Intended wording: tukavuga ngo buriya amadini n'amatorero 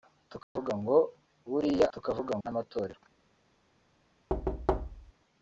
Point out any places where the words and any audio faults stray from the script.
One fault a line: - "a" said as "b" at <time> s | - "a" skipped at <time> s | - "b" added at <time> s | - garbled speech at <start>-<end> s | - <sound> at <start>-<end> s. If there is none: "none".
- dropout at 0.4-0.6 s
- "amadini" said as "tukavuga" at 1.9 s
- thud at 4.3-5.1 s